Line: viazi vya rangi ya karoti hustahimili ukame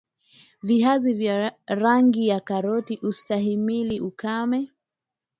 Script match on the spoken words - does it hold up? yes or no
yes